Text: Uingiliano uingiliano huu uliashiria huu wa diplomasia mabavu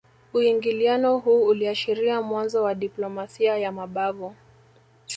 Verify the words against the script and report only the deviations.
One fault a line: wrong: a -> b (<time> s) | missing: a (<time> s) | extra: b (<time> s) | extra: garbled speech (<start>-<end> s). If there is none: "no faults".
missing: uingiliano (1.2 s)
wrong: huu -> mwanzo (2.2 s)
extra: ya (3.6 s)